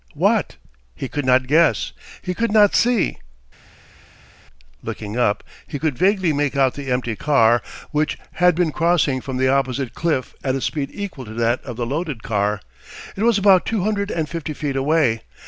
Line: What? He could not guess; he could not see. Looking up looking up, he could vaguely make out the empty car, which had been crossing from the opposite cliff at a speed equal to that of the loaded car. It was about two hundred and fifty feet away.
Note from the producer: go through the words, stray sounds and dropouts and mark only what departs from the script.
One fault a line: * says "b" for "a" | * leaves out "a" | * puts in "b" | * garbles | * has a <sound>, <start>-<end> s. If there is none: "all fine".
* leaves out "looking up"